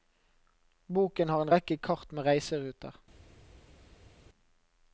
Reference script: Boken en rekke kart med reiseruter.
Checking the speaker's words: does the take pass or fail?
fail